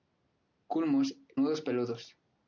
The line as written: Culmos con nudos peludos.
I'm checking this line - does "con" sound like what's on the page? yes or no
no